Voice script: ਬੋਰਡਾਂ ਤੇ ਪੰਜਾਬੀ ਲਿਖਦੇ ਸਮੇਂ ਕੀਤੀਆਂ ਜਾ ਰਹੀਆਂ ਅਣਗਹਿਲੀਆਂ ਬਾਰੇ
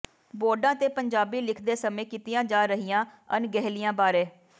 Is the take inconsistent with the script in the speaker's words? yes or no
no